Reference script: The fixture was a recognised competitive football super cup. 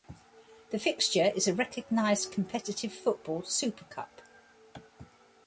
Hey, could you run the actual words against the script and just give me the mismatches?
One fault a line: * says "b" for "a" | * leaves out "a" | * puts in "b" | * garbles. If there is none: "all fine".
* says "is" for "was"